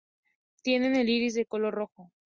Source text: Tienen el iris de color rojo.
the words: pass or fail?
pass